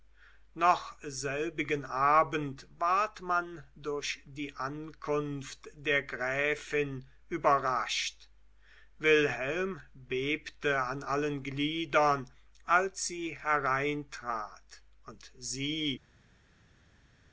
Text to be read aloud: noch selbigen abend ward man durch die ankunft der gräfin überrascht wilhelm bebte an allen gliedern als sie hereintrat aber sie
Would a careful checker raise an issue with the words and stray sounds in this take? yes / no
yes